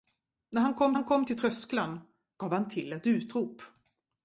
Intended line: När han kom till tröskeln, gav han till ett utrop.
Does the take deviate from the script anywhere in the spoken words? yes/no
yes